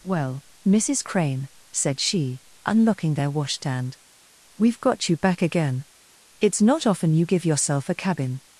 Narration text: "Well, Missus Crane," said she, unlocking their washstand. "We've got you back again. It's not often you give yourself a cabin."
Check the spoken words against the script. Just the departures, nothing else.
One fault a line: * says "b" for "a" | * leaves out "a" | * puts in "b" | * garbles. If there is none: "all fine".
all fine